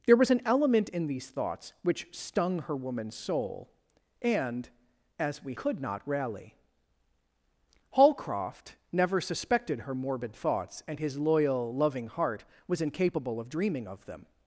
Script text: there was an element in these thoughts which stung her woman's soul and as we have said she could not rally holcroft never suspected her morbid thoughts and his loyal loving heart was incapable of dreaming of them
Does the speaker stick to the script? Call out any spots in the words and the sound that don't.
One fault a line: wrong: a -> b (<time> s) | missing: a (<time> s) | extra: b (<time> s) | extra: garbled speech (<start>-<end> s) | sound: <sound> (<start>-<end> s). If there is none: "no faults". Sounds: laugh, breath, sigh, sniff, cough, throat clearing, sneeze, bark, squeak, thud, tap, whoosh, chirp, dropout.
missing: have said she (5.5 s)